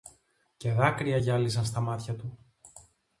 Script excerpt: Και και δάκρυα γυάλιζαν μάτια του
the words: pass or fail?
fail